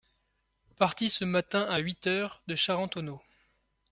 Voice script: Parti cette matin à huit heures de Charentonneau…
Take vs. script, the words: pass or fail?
fail